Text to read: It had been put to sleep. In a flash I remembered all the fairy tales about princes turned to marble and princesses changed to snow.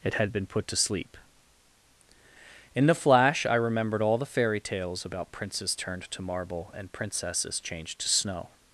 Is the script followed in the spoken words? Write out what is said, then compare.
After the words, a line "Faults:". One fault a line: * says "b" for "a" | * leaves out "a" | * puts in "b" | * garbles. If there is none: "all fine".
It had been put to sleep. In the flash I remembered all the fairy tales about princes turned to marble and princesses changed to snow.
Faults:
* says "the" for "a"